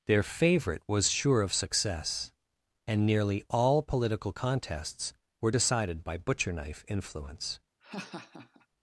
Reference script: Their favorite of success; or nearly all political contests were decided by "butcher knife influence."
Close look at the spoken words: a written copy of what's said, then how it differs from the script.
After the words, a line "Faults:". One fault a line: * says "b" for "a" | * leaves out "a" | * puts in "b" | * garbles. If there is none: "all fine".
Their favorite was sure of success; and nearly all political contests were decided by "butcher knife influence."
Faults:
* puts in "was sure"
* says "and" for "or"